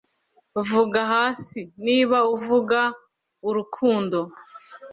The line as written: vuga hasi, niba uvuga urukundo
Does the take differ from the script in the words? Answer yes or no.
no